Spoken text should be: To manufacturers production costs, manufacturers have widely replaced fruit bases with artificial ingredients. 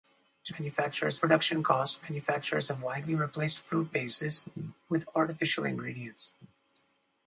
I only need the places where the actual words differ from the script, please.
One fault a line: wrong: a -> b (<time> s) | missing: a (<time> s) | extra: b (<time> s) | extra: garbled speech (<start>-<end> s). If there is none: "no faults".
no faults